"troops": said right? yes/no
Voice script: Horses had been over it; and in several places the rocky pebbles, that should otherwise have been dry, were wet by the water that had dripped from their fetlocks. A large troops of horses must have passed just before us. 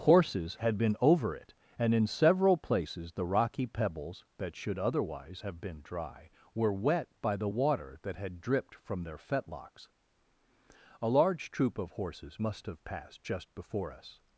no